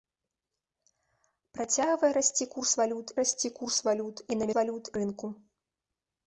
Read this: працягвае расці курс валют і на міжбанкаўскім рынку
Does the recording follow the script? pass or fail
fail